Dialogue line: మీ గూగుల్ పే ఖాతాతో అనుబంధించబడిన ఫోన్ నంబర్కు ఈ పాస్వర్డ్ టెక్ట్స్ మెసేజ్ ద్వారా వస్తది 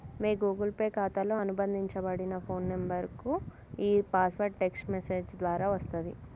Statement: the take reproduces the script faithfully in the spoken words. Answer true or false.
true